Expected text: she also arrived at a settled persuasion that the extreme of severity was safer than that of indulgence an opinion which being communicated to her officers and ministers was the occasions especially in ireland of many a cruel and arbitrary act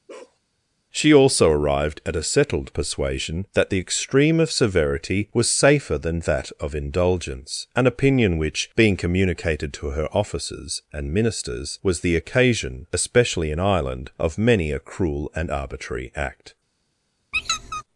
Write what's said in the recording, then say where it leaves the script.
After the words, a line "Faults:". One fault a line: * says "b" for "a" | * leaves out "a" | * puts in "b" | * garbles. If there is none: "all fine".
she also arrived at a settled persuasion that the extreme of severity was safer than that of indulgence an opinion which being communicated to her officers and ministers was the occasion especially in ireland of many a cruel and arbitrary act
Faults:
* says "occasion" for "occasions"